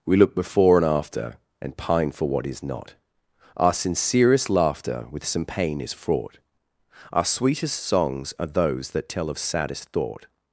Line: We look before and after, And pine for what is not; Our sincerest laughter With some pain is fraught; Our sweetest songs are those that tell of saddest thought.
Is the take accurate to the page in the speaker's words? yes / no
yes